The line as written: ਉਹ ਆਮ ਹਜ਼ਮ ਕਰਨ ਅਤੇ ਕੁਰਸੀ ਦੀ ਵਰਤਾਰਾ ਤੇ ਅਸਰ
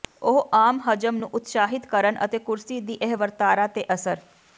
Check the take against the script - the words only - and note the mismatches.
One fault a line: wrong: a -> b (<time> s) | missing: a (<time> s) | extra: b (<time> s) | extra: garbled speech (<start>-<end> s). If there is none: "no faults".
extra: ਨੂੰ ਉਤਸ਼ਾਹਿਤ (1.1 s)
extra: ਇਹ (3.0 s)